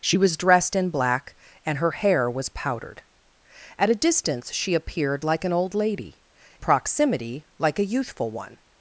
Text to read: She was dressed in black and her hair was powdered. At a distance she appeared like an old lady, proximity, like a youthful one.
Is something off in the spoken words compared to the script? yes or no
no